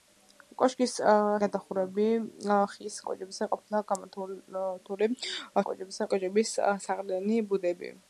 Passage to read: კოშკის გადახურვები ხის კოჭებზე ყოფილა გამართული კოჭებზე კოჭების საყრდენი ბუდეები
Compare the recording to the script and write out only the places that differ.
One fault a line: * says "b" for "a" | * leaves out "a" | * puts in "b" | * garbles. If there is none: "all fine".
all fine